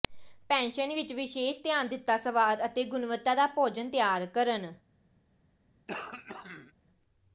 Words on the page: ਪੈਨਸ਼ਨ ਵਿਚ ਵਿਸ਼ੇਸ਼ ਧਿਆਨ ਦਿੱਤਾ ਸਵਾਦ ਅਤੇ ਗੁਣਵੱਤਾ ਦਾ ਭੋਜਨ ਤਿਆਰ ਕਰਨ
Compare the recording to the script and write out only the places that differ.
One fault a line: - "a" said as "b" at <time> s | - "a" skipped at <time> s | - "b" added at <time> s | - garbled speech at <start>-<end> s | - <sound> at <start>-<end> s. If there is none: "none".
- throat clearing at 5.9-6.7 s